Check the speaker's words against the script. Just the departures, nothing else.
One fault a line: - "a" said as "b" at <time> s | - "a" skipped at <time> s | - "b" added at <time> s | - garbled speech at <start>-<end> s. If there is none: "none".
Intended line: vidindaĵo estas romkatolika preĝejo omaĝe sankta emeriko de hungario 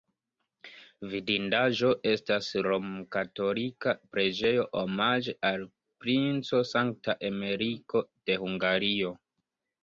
- "al princo" added at 5.5 s